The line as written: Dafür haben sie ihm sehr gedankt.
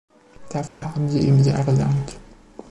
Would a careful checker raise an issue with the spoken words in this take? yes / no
no